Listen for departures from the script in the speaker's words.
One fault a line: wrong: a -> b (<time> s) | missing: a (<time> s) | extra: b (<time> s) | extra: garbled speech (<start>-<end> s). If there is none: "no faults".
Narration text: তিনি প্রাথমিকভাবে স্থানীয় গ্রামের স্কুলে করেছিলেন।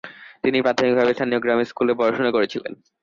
extra: পড়াশোনা (2.0 s)